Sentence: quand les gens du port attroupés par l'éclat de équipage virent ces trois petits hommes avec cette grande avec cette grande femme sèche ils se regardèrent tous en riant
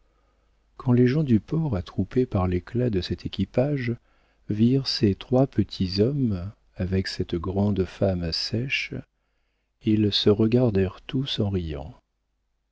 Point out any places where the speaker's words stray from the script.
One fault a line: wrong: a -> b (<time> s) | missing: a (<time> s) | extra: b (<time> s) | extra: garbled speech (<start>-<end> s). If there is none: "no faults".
extra: cet (3.0 s)
missing: avec cette grande (7.8 s)